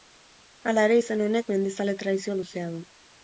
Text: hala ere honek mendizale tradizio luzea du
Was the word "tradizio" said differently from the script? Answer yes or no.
no